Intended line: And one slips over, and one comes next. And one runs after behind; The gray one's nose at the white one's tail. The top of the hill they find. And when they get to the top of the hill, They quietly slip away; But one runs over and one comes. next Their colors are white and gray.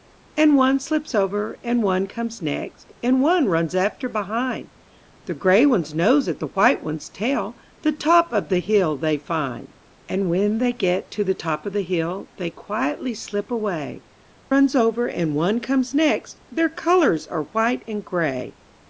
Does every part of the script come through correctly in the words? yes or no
no